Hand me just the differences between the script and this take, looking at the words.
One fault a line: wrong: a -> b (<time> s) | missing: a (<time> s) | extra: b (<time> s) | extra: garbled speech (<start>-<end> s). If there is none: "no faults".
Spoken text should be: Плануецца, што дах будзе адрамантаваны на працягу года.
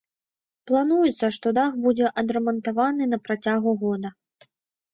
no faults